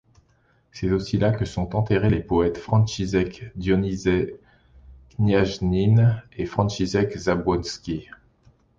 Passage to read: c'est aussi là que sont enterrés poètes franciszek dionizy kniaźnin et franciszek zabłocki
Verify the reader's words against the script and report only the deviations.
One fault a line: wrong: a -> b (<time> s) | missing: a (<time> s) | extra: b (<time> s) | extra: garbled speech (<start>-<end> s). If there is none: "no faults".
extra: les (2.1 s)